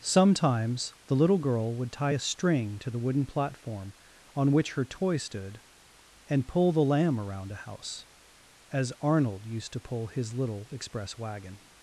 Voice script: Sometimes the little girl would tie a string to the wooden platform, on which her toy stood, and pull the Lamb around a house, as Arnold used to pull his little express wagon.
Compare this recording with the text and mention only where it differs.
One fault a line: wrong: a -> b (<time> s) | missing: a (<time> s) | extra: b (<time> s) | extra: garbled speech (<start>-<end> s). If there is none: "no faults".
no faults